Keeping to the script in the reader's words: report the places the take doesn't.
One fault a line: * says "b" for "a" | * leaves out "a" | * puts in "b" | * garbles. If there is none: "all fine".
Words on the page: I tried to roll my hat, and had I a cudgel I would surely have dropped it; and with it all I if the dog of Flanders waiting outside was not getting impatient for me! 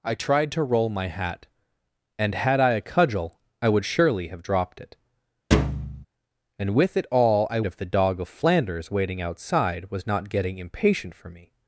all fine